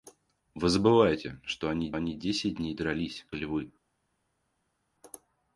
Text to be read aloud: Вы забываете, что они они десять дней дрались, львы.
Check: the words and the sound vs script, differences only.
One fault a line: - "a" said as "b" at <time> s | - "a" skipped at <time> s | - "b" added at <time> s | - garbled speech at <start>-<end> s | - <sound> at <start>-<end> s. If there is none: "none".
none